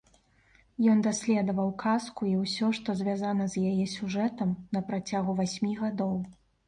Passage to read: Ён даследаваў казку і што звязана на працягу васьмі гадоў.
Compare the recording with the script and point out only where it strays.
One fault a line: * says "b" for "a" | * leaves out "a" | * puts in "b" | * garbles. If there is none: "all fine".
* puts in "ўсё"
* puts in "з яе сюжэтам"